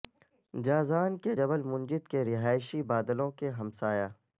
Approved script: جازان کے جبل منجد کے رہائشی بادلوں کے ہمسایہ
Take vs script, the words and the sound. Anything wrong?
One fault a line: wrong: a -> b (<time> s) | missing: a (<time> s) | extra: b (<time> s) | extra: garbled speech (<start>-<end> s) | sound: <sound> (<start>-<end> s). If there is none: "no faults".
no faults